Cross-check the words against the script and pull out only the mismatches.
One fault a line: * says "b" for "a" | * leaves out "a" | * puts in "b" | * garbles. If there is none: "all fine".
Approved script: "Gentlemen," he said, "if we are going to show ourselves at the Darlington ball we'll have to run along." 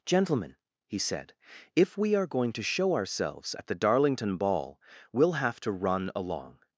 all fine